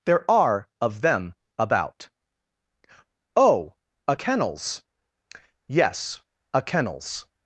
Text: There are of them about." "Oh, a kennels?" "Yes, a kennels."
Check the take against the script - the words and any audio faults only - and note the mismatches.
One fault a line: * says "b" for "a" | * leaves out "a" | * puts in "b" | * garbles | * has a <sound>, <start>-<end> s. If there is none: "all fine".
all fine